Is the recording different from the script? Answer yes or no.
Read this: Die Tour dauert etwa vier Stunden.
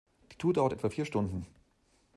no